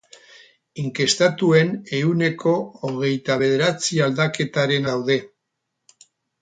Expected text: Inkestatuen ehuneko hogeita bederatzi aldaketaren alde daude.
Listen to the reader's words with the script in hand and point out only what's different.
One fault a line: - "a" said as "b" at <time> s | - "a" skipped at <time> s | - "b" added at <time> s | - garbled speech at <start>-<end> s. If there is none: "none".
- "alde" skipped at 4.9 s